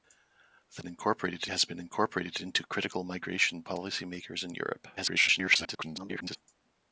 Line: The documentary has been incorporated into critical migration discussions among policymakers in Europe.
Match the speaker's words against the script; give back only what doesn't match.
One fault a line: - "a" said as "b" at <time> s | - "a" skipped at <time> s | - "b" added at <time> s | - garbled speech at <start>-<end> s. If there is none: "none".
- "documentary" said as "incorporated" at 0.9 s
- "discussions among" skipped at 3.6 s
- garbled speech at 5.0-6.4 s